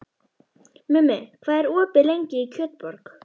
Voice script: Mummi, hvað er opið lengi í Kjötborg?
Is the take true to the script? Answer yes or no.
yes